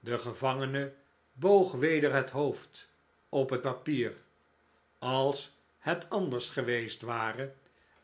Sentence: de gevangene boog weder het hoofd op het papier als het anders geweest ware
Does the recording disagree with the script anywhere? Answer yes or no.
no